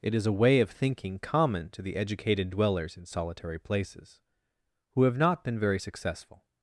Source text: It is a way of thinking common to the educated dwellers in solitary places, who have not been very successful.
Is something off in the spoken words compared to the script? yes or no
no